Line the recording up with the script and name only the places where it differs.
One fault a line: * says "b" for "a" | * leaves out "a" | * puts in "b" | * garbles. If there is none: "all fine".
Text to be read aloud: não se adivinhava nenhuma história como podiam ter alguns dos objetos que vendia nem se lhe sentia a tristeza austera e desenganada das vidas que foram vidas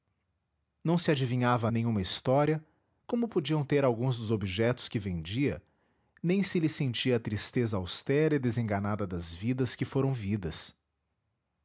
all fine